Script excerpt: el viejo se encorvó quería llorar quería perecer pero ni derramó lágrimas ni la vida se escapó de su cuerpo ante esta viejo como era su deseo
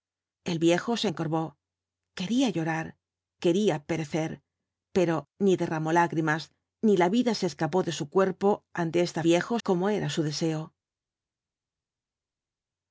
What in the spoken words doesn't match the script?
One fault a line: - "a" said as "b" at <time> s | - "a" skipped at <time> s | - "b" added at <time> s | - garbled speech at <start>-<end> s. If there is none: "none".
none